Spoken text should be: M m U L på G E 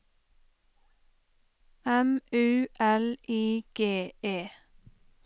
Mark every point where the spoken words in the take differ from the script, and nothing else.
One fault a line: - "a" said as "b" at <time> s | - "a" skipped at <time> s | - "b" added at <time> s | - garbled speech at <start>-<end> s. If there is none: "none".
- "m" skipped at 2.2 s
- "på" said as "I" at 3.3 s